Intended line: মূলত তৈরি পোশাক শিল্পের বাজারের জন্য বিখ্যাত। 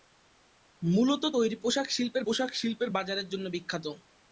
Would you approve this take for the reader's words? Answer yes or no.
no